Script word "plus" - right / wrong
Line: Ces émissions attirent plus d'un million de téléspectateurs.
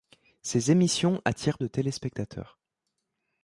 wrong